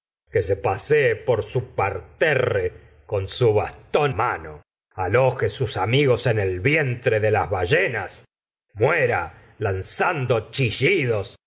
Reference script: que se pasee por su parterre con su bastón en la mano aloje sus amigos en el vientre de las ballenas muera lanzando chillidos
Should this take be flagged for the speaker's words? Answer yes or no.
yes